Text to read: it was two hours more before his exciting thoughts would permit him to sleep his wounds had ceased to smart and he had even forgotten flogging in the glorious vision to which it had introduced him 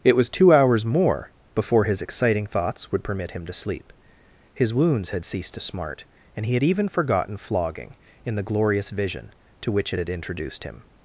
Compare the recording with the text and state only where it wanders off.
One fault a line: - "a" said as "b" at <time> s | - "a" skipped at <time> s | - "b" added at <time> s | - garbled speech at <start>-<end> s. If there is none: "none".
none